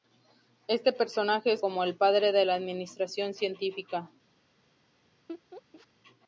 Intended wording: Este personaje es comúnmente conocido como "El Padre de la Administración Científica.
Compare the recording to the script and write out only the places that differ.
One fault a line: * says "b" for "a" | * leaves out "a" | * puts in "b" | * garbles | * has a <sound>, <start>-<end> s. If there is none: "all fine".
* leaves out "comúnmente conocido"
* has a laugh, 5.3-5.9 s